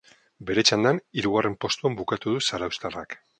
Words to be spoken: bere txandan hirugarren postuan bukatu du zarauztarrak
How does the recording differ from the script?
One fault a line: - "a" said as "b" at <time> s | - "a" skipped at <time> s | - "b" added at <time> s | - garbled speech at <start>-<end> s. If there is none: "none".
none